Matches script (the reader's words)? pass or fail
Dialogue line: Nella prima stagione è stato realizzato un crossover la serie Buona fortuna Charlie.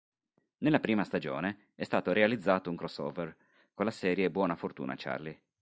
fail